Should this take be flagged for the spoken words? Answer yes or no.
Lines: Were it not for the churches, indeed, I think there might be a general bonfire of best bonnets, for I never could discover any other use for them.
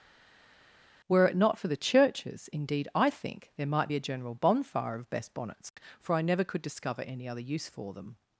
no